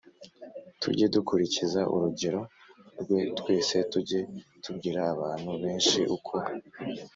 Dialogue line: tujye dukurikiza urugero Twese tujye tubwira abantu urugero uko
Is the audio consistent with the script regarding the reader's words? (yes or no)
no